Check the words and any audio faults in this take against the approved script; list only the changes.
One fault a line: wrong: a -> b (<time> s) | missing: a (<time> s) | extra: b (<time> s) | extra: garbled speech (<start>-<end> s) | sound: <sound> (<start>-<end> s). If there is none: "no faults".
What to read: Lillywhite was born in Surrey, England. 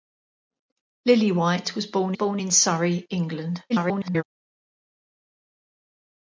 extra: born (2.1 s)
extra: garbled speech (3.7-4.2 s)